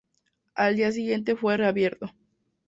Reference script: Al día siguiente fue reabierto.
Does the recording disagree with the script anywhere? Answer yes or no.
no